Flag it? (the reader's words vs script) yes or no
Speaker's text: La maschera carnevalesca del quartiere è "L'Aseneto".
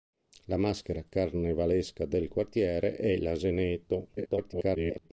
yes